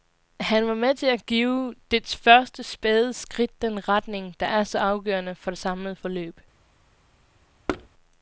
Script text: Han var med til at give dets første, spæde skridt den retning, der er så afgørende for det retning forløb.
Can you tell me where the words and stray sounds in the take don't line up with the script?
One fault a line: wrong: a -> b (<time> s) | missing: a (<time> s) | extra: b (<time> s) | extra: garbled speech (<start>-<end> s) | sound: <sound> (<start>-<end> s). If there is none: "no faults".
wrong: retning -> samlede (5.6 s)
sound: thud (7.7-7.9 s)